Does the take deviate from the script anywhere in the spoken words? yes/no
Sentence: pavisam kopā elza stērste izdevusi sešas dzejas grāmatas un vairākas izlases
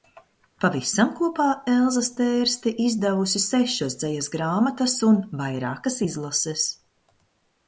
no